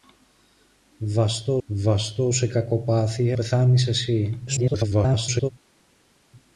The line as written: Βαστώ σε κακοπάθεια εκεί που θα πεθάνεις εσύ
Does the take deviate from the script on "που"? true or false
true